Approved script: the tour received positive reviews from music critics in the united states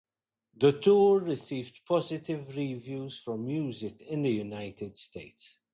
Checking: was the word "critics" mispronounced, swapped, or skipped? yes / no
yes